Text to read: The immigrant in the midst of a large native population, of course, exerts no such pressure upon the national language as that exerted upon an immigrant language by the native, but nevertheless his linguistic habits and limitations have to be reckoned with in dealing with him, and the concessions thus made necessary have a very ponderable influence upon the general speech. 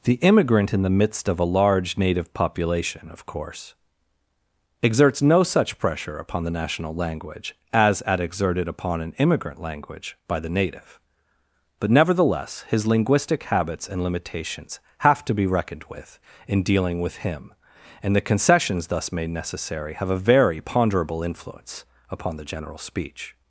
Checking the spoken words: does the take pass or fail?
fail